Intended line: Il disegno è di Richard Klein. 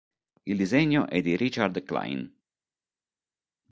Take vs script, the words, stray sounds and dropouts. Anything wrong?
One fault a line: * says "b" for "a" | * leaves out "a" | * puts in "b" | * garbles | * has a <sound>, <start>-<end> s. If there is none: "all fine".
all fine